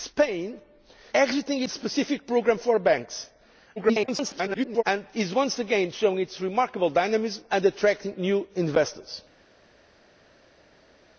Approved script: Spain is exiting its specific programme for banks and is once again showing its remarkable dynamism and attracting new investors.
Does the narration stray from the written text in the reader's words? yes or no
yes